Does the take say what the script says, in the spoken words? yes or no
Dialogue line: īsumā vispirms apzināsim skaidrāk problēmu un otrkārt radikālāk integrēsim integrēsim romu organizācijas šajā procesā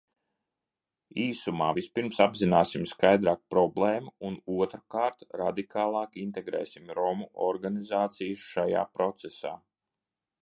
no